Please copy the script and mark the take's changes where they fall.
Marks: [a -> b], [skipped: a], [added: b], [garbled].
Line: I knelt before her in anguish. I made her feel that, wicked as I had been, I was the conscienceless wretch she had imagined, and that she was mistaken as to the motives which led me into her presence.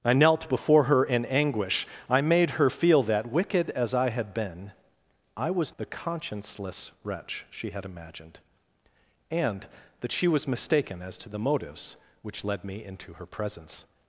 I knelt before her in anguish. I made her feel that, wicked as I had been, I was the conscienceless wretch she had imagined, and that she was mistaken as to the motives which led me into her presence.